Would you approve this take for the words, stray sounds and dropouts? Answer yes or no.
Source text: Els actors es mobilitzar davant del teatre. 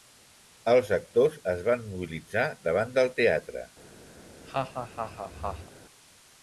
no